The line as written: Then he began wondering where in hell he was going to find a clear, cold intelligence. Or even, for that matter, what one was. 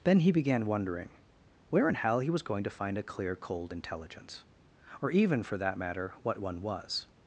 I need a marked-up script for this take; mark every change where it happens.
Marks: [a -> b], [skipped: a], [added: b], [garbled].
Then he began wondering where in hell he was going to find a clear, cold intelligence. Or even, for that matter, what one was.